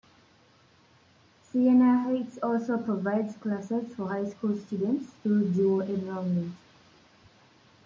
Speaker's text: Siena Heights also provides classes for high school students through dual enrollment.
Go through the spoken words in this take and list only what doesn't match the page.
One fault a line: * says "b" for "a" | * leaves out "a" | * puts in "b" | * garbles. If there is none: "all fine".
all fine